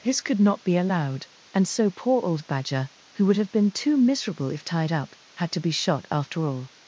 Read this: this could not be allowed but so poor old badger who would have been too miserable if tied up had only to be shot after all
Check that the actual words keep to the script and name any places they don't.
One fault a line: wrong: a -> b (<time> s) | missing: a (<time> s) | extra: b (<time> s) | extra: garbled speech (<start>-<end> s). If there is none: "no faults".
wrong: but -> and (1.5 s)
missing: only (5.5 s)